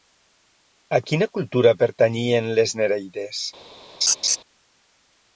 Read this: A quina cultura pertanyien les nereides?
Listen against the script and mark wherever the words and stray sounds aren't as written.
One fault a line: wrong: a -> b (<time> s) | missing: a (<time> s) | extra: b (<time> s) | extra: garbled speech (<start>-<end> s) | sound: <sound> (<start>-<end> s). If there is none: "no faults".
sound: laugh (4.0-4.4 s)